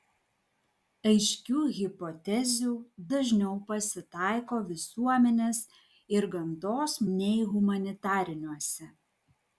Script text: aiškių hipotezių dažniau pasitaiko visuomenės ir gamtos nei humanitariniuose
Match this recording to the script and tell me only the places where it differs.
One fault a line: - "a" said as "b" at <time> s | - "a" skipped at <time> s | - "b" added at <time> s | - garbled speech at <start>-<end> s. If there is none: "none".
none